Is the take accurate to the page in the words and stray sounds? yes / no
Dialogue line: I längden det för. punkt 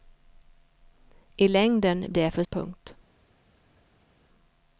yes